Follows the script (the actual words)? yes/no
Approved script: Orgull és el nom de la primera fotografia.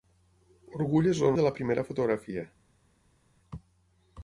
no